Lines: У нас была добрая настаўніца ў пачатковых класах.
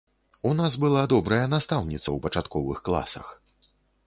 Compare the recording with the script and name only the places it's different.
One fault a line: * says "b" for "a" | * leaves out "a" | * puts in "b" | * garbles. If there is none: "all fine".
all fine